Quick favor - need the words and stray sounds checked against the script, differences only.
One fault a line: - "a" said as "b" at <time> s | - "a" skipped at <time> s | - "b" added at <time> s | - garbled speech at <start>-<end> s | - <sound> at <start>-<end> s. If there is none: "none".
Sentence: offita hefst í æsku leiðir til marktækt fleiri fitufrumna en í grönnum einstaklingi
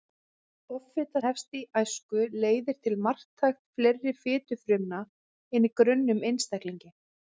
none